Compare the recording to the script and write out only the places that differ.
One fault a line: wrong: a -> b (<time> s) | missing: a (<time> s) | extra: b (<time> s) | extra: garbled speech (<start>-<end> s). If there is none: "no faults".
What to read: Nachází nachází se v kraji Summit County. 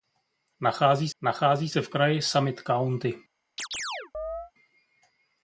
no faults